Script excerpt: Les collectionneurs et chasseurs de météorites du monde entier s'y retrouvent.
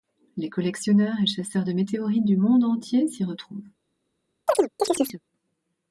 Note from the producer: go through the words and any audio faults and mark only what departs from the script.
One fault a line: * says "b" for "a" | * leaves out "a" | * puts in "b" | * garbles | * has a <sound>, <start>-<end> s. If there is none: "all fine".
* has a chirp, 4.5-5.2 s